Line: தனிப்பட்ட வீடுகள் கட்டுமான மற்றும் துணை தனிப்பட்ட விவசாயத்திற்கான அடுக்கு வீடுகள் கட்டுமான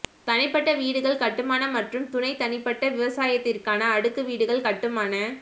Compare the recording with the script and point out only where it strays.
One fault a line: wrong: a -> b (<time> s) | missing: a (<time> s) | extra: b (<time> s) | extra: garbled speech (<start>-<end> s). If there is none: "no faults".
no faults